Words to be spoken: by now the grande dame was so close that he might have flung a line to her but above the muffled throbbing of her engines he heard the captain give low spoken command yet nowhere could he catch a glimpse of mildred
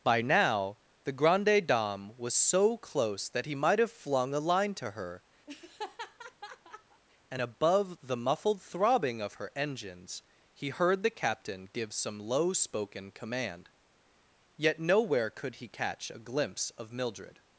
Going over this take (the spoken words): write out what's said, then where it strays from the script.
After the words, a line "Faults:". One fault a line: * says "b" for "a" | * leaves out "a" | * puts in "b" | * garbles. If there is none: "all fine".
by now the grande dame was so close that he might have flung a line to her and above the muffled throbbing of her engines he heard the captain give some low spoken command yet nowhere could he catch a glimpse of mildred
Faults:
* says "and" for "but"
* puts in "some"